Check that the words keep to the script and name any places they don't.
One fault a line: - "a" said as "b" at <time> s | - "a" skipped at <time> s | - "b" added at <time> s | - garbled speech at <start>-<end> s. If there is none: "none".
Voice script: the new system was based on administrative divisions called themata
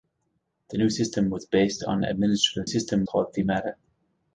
- "divisions" said as "system" at 2.6 s